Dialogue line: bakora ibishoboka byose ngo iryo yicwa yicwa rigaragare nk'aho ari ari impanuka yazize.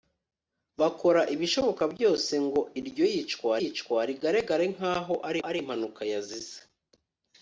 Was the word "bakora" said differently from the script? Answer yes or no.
no